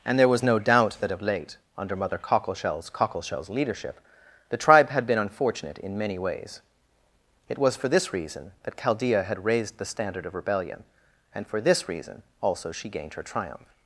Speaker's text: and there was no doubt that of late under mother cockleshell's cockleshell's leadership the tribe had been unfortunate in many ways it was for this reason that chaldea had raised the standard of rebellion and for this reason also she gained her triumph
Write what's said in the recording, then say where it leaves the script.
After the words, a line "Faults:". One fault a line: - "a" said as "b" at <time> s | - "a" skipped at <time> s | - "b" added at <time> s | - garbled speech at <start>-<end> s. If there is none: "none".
and there was no doubt that of late under mother cockleshell's cockleshell's leadership the tribe had been unfortunate in many ways it was for this reason that chaldea had raised the standard of rebellion and for this reason also she gained her triumph
Faults:
none